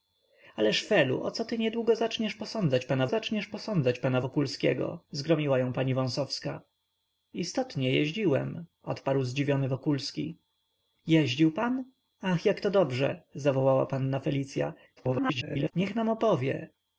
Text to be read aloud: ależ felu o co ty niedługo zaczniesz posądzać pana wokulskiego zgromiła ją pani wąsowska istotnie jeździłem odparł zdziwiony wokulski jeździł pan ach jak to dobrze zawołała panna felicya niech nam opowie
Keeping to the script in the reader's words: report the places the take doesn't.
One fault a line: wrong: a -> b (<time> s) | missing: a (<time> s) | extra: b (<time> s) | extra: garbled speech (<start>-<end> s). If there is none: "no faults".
extra: zaczniesz posądzać pana (3.1 s)
extra: garbled speech (15.0-15.7 s)